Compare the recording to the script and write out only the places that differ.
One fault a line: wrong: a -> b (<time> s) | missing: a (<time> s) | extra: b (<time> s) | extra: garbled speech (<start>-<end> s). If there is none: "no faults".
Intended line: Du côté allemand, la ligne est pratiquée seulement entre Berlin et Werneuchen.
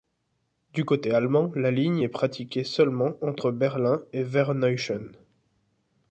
no faults